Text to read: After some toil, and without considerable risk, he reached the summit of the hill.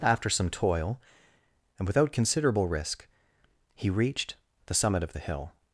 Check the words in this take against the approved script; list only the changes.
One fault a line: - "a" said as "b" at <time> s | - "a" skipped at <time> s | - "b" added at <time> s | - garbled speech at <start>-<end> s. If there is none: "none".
none